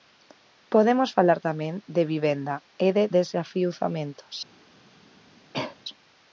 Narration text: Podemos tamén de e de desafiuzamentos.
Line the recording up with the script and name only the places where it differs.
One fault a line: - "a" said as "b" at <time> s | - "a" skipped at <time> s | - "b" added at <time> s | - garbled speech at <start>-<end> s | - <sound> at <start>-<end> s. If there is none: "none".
- "falar" added at 1.2 s
- "vivenda" added at 2.1 s
- cough at 5.5-5.8 s